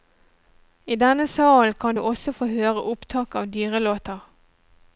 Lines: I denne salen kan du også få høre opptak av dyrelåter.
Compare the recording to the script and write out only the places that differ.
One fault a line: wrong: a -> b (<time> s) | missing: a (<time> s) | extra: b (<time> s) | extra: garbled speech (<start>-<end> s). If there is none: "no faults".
no faults